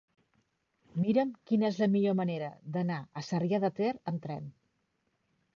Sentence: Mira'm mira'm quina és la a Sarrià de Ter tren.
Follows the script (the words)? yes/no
no